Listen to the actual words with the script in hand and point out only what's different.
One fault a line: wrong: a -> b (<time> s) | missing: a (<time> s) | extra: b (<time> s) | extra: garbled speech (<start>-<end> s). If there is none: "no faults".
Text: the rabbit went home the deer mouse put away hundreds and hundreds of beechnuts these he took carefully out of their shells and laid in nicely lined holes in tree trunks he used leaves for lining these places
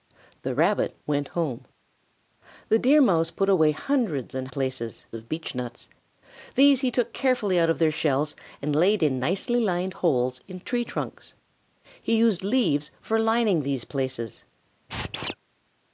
wrong: hundreds -> places (4.5 s)